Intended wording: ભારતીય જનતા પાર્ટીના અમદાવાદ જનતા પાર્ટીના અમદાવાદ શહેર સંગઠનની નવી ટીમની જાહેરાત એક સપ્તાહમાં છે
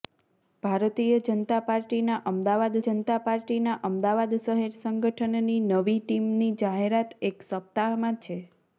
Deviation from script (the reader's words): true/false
false